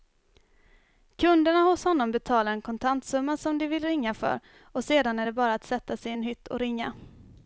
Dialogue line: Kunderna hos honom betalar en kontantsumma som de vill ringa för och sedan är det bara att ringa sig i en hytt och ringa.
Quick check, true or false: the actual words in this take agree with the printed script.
false